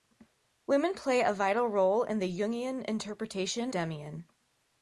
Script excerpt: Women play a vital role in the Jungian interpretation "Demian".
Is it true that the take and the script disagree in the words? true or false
false